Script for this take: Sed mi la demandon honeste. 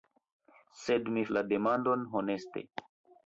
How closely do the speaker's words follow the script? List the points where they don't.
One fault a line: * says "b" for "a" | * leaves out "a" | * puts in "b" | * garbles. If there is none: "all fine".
all fine